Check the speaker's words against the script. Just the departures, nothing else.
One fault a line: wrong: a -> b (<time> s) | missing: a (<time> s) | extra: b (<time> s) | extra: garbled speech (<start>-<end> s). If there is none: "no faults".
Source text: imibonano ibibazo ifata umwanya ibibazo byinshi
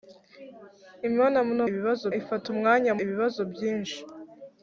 no faults